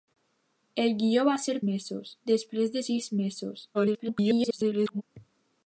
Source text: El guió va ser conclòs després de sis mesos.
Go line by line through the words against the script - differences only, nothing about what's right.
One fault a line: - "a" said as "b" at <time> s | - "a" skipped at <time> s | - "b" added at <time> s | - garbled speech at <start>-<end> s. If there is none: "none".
- "conclòs" said as "mesos" at 1.7 s
- garbled speech at 3.7-5.0 s